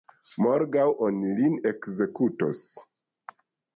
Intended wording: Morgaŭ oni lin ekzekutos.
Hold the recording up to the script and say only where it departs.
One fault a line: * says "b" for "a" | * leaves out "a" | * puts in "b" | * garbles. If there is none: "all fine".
all fine